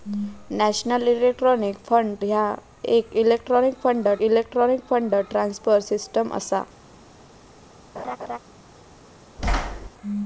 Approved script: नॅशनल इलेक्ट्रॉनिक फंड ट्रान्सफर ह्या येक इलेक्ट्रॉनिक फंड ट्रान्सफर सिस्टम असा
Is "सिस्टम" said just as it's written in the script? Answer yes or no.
yes